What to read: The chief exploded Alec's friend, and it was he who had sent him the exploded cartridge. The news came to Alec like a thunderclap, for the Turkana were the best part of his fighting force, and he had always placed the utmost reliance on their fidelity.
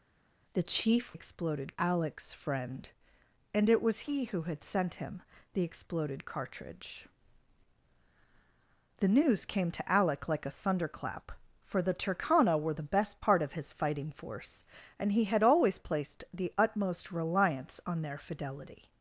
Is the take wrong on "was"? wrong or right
right